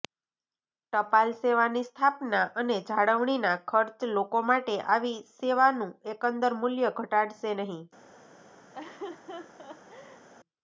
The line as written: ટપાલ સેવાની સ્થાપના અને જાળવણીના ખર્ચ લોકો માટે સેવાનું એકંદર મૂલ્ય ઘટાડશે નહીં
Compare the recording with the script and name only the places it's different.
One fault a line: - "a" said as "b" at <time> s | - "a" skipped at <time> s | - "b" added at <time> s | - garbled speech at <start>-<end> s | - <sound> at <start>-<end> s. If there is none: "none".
- "આવી" added at 4.9 s
- laugh at 8.7-10.3 s